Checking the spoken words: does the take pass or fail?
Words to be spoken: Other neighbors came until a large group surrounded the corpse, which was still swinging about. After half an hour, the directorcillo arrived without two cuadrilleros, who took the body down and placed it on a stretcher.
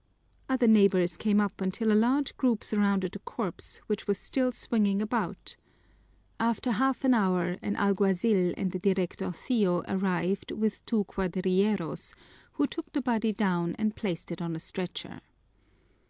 fail